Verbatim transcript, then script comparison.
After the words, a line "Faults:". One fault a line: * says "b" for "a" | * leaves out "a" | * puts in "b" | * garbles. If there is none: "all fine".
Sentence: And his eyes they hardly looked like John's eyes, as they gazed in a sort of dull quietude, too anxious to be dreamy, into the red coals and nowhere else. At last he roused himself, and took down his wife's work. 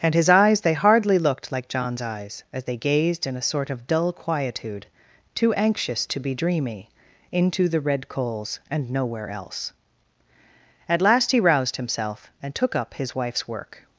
And his eyes they hardly looked like John's eyes, as they gazed in a sort of dull quietude, too anxious to be dreamy, into the red coals and nowhere else. At last he roused himself, and took up his wife's work.
Faults:
* says "up" for "down"